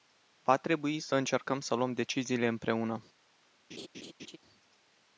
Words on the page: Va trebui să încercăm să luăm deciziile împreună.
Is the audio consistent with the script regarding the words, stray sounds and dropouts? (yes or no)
no